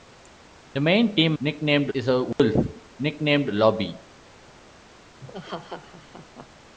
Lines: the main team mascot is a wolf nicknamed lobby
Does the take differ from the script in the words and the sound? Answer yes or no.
yes